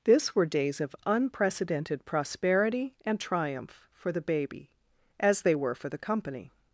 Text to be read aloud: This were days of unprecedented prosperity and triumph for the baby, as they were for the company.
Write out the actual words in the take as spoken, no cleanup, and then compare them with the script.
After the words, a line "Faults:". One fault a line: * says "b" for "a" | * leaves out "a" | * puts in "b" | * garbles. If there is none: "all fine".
This were days of unprecedented prosperity and triumph for the baby, as they were for the company.
Faults:
all fine